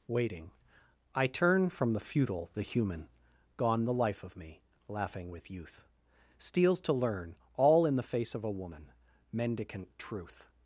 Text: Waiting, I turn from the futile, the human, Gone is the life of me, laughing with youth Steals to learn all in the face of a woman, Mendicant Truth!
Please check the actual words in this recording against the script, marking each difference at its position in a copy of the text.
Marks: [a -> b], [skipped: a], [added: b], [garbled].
Waiting, I turn from the futile, the human, Gone [skipped: is] the life of me, laughing with youth Steals to learn all in the face of a woman, Mendicant Truth!